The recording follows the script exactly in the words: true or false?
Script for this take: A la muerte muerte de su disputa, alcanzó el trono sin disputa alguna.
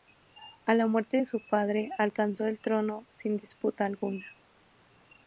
false